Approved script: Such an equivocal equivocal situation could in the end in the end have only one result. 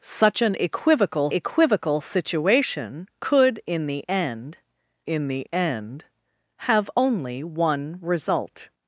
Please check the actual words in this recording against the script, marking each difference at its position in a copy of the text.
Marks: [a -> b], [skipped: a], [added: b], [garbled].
Such an equivocal equivocal situation could in the end in the end have only one result.